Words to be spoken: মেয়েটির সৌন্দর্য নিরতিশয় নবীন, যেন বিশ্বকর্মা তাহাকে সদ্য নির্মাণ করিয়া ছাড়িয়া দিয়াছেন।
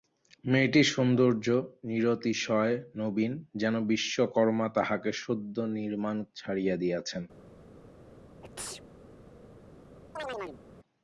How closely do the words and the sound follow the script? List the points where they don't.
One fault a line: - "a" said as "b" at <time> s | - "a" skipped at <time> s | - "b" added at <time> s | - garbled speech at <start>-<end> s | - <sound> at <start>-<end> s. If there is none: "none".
- "করিয়া" skipped at 6.2 s
- sneeze at 8.4-8.8 s
- chirp at 10.2-10.6 s